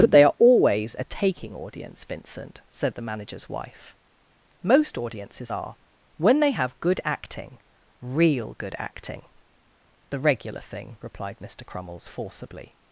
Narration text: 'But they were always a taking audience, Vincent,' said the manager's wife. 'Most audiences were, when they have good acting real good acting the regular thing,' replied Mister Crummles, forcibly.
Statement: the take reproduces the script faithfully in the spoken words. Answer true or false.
false